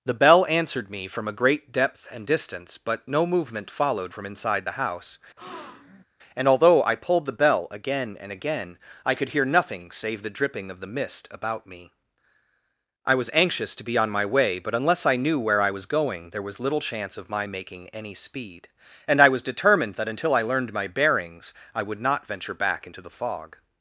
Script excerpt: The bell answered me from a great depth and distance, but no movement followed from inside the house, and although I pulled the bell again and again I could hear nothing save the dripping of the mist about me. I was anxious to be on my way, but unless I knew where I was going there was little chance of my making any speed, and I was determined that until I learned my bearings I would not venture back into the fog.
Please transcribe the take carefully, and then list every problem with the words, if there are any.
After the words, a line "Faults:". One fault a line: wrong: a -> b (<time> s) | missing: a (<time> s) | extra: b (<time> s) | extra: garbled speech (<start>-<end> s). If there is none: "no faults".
The bell answered me from a great depth and distance, but no movement followed from inside the house, and although I pulled the bell again and again I could hear nothing save the dripping of the mist about me. I was anxious to be on my way, but unless I knew where I was going there was little chance of my making any speed, and I was determined that until I learned my bearings I would not venture back into the fog.
Faults:
no faults